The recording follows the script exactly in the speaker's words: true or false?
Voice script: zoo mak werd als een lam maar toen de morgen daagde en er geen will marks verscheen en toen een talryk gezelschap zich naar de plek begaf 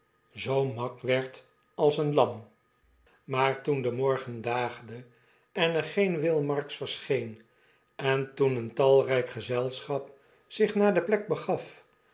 true